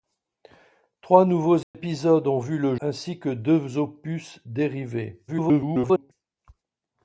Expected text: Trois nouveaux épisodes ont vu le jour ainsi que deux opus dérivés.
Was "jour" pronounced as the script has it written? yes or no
no